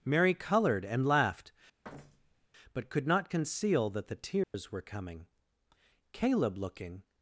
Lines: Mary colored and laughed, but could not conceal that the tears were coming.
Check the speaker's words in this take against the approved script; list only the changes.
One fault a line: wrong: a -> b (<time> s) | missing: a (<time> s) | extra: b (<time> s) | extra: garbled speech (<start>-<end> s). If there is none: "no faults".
extra: Caleb looking (6.1 s)